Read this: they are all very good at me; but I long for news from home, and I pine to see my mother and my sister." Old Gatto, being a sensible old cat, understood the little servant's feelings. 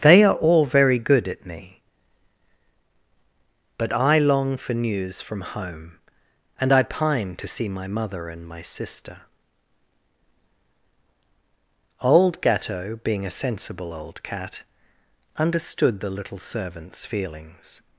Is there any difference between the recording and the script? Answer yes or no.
no